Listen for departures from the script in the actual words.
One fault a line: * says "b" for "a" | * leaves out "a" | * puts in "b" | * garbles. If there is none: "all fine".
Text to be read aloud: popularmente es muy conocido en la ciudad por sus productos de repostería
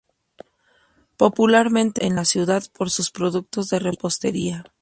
* leaves out "es muy conocido"